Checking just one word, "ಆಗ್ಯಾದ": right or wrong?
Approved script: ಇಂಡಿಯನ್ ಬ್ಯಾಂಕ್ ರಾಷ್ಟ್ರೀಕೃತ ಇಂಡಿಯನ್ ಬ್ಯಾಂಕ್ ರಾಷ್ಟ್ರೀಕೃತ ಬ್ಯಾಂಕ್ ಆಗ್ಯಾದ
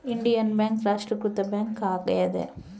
right